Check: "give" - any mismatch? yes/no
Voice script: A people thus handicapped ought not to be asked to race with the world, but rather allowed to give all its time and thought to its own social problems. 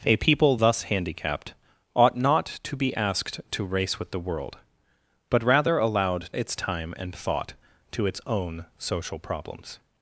yes